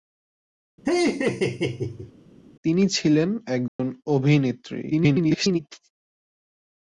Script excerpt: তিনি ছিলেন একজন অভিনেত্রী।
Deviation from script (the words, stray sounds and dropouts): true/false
true